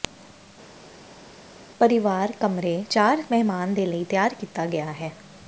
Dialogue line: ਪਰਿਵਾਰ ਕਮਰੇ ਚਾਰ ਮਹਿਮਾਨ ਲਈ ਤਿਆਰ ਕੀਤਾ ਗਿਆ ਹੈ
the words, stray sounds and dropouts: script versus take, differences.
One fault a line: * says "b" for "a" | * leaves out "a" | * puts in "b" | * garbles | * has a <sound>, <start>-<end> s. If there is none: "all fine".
* puts in "ਦੇ"